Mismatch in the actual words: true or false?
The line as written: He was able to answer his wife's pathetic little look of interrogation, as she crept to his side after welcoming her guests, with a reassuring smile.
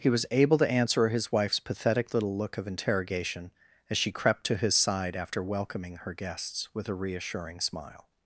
false